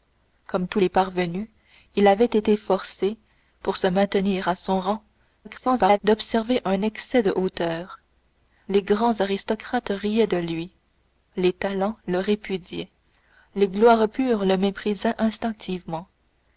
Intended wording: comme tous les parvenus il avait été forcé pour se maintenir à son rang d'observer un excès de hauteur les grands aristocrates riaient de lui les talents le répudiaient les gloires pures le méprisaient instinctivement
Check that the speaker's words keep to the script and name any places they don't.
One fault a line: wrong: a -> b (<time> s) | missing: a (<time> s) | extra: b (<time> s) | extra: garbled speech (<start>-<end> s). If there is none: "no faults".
extra: garbled speech (5.4-6.0 s)